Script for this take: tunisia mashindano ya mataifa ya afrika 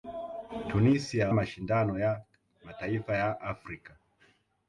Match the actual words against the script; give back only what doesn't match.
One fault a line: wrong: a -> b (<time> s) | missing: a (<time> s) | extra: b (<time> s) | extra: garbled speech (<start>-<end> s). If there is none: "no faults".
no faults